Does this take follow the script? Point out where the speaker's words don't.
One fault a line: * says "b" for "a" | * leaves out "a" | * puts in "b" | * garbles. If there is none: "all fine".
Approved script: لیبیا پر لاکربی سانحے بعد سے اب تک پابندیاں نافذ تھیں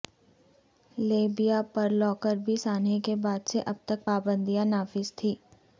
* puts in "کے"